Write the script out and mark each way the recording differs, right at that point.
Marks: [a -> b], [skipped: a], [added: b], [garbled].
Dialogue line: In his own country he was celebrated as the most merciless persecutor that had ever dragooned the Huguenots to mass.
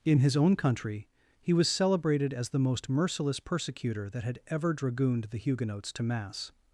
In his own country he was celebrated as the most merciless persecutor that had ever dragooned the Huguenots to mass.